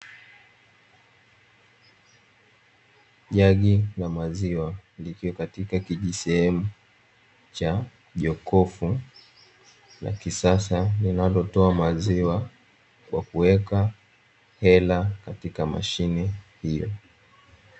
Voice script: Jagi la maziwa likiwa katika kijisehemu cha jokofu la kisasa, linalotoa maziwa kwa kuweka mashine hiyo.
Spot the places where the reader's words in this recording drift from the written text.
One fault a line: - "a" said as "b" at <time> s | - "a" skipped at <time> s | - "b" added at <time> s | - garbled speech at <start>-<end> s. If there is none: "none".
- "hela katika" added at 14.6 s